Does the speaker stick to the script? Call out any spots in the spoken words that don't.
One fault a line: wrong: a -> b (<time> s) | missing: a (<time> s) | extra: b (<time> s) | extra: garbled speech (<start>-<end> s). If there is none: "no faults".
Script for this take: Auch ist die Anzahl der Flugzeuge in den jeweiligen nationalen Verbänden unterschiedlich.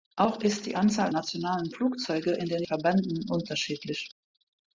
wrong: der -> nationalen (1.1 s)
missing: jeweiligen nationalen (2.6 s)